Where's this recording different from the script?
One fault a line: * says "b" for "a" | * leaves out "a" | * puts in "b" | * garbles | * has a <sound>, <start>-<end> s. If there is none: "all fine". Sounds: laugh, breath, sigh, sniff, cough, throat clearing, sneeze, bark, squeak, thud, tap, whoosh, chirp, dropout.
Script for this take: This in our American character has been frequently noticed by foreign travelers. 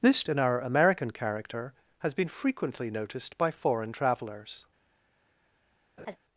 * has a laugh, 6.0-6.2 s